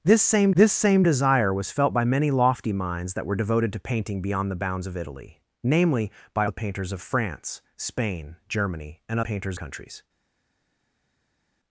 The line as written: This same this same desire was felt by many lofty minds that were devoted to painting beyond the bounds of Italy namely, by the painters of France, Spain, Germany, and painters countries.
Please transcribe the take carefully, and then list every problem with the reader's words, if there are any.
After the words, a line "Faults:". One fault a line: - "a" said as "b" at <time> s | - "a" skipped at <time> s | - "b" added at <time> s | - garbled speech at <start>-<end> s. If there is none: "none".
This same this same desire was felt by many lofty minds that were devoted to painting beyond the bounds of Italy namely, by the painters of France, Spain, Germany, and painters countries.
Faults:
none